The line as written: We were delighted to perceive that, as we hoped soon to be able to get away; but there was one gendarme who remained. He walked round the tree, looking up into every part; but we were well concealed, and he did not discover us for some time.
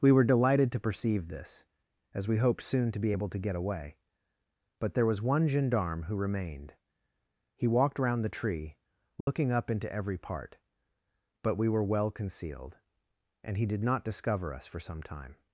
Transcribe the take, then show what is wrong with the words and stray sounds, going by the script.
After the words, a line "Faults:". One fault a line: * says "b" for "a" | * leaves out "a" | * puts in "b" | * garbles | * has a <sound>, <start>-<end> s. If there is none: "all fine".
We were delighted to perceive this, as we hoped soon to be able to get away; but there was one gendarme who remained. He walked round the tree, looking up into every part; but we were well concealed, and he did not discover us for some time.
Faults:
* says "this" for "that"
* has a dropout, 9.2-9.3 s